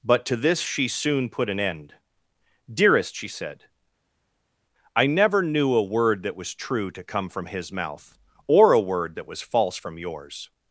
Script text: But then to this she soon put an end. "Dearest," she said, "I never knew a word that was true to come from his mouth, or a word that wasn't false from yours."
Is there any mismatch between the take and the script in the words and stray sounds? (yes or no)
yes